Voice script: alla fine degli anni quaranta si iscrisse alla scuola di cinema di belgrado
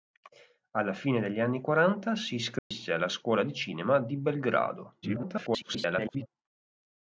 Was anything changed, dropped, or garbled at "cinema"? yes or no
no